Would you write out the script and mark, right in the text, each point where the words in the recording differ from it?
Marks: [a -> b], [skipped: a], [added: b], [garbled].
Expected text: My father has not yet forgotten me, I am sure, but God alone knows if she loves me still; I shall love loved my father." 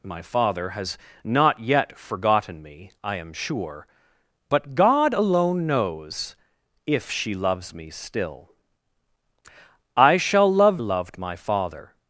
My father has not yet forgotten me, I am sure, but God alone knows if she loves me still; I shall love loved my father."